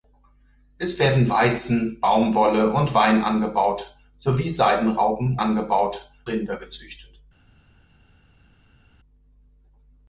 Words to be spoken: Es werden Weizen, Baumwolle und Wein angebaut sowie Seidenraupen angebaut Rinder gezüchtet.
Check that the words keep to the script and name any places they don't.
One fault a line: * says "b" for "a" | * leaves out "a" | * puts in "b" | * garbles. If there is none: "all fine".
all fine